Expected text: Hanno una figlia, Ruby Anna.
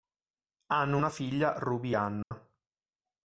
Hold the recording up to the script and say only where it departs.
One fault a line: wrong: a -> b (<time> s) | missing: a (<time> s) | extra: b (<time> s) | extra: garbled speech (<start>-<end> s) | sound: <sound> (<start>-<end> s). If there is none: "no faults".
sound: dropout (2.2-2.3 s)